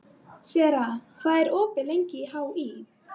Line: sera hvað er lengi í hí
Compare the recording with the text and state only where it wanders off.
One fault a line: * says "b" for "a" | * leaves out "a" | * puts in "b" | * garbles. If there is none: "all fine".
* puts in "opið"